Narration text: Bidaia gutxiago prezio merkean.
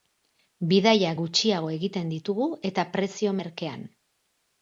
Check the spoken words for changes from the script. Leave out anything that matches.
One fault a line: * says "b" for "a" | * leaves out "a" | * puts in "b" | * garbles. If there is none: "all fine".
* puts in "egiten ditugu eta"